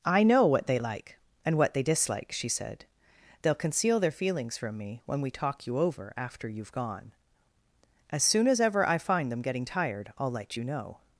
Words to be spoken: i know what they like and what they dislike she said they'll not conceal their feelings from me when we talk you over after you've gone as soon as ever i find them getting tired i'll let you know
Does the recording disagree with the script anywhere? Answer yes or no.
yes